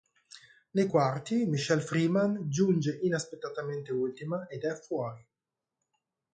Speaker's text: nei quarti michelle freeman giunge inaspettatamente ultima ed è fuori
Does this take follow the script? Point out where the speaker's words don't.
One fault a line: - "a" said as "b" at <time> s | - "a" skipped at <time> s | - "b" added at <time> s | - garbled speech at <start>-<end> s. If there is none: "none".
none